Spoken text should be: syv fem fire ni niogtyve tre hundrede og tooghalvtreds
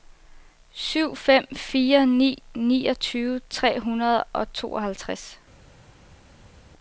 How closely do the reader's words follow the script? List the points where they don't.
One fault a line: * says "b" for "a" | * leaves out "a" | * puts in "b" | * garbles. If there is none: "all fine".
all fine